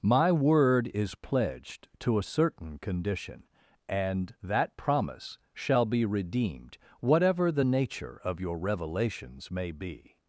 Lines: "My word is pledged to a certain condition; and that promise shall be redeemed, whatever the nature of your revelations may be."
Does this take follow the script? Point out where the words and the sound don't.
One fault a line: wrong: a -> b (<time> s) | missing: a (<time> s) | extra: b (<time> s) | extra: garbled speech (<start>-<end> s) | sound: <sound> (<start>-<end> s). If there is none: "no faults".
no faults